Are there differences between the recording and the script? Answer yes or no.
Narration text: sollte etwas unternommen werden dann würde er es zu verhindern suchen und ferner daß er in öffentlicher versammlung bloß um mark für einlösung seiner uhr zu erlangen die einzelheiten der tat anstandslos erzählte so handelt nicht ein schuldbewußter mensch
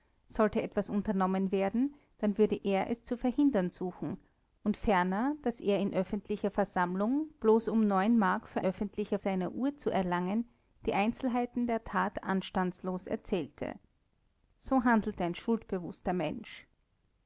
yes